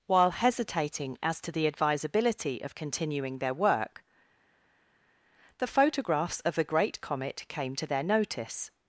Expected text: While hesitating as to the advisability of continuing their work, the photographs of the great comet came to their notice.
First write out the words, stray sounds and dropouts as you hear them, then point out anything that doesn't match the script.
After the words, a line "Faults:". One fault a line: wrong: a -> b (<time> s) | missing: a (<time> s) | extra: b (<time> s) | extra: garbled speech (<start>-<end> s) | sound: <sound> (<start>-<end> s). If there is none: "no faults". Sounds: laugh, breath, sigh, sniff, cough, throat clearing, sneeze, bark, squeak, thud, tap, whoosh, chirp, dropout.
While hesitating as to the advisability of continuing their work, the photographs of the great comet came to their notice.
Faults:
no faults